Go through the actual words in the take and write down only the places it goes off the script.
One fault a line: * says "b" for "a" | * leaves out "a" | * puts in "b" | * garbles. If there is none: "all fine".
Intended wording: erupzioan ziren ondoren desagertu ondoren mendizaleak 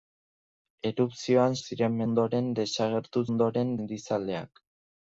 all fine